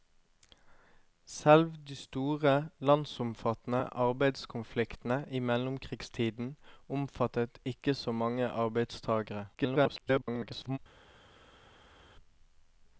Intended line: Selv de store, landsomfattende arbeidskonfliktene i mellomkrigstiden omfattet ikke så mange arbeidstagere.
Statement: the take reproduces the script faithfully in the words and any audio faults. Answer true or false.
false